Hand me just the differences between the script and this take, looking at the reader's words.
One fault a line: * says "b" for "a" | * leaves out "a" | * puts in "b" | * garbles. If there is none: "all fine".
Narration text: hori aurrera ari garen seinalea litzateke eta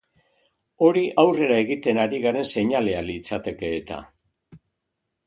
* puts in "egiten"